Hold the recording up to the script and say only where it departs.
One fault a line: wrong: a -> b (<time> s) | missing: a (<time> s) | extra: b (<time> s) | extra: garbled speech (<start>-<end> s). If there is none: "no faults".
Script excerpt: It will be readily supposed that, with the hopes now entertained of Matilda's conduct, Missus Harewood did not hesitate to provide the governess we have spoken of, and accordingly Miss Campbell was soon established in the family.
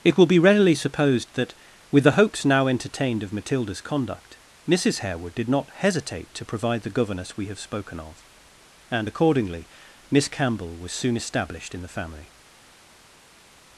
no faults